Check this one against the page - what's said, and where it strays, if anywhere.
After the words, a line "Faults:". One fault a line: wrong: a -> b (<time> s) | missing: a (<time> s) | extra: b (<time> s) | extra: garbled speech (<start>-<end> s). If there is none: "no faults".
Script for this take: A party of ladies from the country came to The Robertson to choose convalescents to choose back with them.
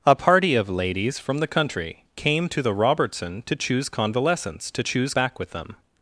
A party of ladies from the country came to The Robertson to choose convalescents to choose back with them.
Faults:
no faults